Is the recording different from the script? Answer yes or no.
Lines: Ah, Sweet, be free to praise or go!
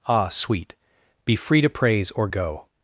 no